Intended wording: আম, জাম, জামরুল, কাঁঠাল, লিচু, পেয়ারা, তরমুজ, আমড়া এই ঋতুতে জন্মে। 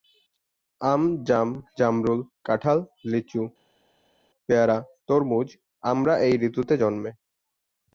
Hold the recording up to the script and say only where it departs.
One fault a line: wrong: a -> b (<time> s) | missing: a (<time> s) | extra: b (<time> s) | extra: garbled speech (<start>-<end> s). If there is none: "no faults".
no faults